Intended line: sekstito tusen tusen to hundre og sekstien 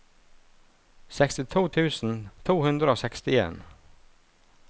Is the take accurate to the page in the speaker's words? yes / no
no